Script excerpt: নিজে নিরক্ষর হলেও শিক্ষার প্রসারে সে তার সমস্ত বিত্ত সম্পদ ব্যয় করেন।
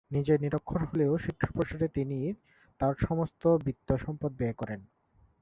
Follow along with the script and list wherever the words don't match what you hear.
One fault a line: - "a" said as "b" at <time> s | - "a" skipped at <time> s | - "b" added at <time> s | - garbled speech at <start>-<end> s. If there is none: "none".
- "সে" said as "তিনি" at 1.9 s